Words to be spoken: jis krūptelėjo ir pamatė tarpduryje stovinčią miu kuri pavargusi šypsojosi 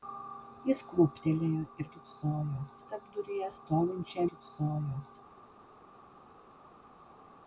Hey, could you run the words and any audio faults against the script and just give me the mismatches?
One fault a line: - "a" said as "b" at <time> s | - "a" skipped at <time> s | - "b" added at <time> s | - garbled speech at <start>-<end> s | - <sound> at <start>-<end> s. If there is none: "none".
- "pamatė" said as "šypsojosi" at 1.9 s
- "miu kuri pavargusi" skipped at 4.3 s